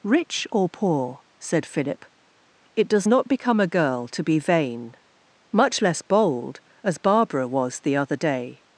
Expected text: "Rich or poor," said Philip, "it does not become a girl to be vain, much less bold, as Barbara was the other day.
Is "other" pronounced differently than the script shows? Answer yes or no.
no